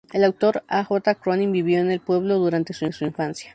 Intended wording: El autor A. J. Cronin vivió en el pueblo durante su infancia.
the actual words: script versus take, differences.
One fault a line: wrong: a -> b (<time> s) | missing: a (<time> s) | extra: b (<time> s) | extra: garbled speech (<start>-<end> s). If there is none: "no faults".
extra: su (2.9 s)